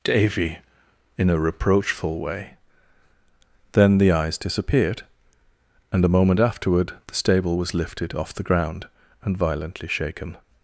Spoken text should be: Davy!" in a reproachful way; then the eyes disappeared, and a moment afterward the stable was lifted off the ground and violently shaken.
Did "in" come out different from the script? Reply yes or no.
no